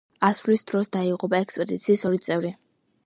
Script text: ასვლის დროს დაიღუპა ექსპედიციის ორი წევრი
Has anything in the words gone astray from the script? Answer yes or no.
no